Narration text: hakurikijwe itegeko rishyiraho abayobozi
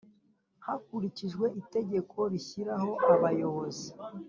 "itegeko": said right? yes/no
yes